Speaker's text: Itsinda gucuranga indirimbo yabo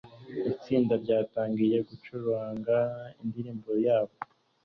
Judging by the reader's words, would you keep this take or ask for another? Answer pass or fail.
fail